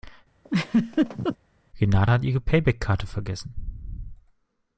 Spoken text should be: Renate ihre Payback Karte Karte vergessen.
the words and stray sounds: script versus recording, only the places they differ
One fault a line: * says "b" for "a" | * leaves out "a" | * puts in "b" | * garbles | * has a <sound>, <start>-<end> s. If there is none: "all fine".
* has a laugh, 0.4-1.4 s
* puts in "hat"
* leaves out "Karte"